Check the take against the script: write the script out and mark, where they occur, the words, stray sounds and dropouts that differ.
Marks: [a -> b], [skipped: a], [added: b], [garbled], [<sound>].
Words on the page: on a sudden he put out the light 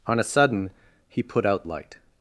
on a sudden he put out [skipped: the] light